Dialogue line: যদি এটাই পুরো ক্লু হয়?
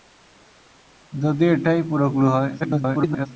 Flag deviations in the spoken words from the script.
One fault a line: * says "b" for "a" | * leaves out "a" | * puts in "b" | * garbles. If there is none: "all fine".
* garbles